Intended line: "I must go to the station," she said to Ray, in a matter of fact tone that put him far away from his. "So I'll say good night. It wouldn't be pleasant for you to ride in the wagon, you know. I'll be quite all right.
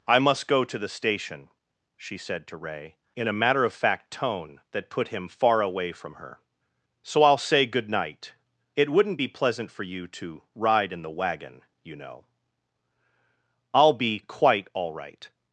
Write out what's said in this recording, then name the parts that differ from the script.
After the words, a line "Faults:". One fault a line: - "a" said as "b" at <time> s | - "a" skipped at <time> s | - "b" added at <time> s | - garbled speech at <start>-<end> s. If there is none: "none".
"I must go to the station," she said to Ray, in a matter of fact tone that put him far away from her. "So I'll say good night. It wouldn't be pleasant for you to ride in the wagon, you know. I'll be quite all right.
Faults:
- "his" said as "her" at 6.2 s